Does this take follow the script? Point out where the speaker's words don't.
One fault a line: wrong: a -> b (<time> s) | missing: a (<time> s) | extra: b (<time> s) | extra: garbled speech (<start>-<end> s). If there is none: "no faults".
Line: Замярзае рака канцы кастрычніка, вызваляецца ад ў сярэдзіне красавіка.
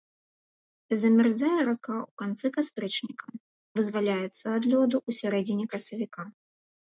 extra: ў (2.0 s)
extra: лёду (4.7 s)